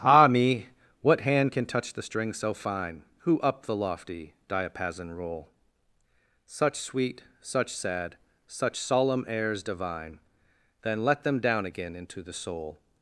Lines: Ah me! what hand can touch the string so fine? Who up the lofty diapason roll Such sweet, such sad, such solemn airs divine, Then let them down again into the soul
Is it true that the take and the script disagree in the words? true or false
false